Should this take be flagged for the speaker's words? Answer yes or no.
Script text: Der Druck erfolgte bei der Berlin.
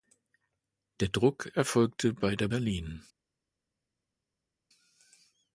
no